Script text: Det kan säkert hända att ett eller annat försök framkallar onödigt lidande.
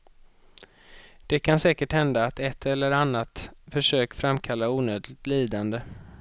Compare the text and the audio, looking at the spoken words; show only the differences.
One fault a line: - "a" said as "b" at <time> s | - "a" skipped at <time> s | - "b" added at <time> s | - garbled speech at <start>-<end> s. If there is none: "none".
none